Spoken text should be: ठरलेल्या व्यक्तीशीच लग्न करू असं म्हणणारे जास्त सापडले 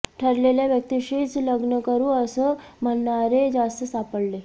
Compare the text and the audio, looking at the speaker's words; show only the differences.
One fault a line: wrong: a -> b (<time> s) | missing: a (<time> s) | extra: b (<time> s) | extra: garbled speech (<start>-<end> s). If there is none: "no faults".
no faults